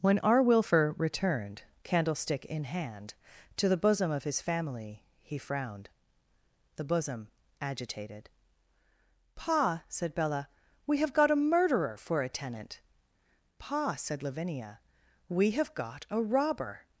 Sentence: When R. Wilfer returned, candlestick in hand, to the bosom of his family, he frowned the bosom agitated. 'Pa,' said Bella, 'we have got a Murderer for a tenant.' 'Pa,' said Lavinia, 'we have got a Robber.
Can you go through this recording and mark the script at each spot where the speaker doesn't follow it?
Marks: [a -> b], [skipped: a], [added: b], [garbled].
When R. Wilfer returned, candlestick in hand, to the bosom of his family, he frowned the bosom agitated. 'Pa,' said Bella, 'we have got a Murderer for a tenant.' 'Pa,' said Lavinia, 'we have got a Robber.